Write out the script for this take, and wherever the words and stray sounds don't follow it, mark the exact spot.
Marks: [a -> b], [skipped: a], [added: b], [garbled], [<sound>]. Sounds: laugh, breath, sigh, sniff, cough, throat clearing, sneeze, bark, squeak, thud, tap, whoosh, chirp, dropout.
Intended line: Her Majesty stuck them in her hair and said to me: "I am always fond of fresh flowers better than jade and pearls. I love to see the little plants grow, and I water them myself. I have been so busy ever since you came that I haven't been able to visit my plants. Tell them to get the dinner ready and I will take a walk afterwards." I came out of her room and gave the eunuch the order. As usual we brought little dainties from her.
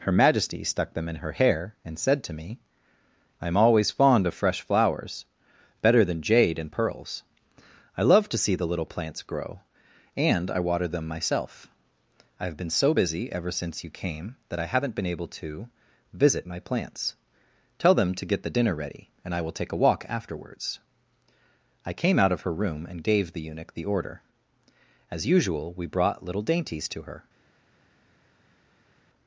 Her Majesty stuck them in her hair and said to me: "I am always fond of fresh flowers better than jade and pearls. I love to see the little plants grow, and I water them myself. I have been so busy ever since you came that I haven't been able to visit my plants. Tell them to get the dinner ready and I will take a walk afterwards." I came out of her room and gave the eunuch the order. As usual we brought little dainties [from -> to] her.